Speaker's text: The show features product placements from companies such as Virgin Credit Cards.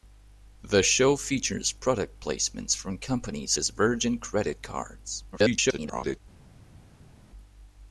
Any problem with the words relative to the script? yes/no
yes